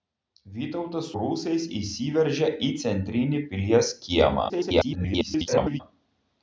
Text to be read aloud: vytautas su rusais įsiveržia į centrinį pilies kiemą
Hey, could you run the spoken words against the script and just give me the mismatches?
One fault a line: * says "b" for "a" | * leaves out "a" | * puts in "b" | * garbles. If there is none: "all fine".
* leaves out "su"
* garbles